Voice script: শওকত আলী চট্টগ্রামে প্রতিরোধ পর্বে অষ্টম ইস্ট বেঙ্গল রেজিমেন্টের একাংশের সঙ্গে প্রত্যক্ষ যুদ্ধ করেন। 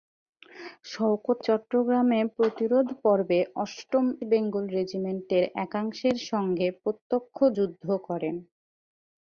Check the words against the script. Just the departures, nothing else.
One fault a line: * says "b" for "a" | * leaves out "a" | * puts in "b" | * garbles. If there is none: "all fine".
* leaves out "আলী"
* leaves out "ইস্ট"